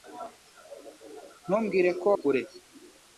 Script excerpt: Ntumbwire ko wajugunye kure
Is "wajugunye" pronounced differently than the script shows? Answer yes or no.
yes